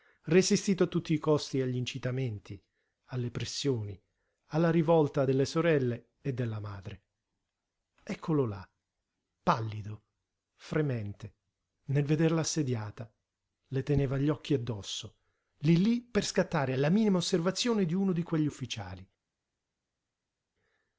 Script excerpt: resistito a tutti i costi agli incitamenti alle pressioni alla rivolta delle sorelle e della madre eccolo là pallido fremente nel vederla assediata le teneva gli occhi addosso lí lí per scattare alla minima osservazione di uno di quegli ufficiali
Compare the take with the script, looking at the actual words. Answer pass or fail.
pass